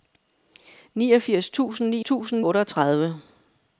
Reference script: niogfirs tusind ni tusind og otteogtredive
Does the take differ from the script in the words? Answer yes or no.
no